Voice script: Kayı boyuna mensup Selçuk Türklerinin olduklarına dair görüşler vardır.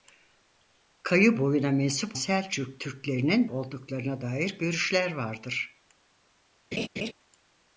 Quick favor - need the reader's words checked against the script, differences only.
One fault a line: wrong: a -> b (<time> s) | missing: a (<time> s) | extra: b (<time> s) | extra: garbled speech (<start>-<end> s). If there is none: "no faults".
no faults